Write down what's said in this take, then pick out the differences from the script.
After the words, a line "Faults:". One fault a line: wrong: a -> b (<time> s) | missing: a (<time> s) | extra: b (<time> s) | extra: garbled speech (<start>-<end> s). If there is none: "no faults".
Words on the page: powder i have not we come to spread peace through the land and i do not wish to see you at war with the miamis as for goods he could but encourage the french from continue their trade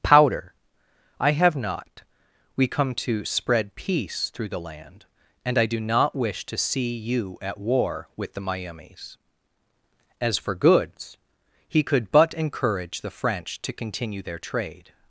powder i have not we come to spread peace through the land and i do not wish to see you at war with the miamis as for goods he could but encourage the french to continue their trade
Faults:
wrong: from -> to (13.6 s)